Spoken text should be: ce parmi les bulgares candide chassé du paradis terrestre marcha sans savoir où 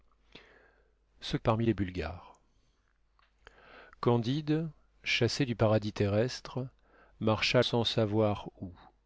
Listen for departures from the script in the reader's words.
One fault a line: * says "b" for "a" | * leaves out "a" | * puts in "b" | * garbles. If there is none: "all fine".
all fine